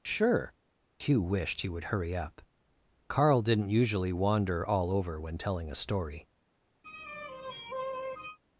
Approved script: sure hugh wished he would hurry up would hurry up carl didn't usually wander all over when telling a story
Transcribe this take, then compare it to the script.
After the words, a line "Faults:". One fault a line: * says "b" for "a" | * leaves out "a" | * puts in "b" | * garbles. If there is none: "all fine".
sure hugh wished he would hurry up carl didn't usually wander all over when telling a story
Faults:
* leaves out "would hurry up"